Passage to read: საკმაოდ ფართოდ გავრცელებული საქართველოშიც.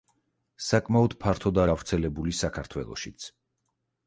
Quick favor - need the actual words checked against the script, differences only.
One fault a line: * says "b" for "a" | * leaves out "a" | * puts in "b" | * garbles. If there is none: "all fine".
all fine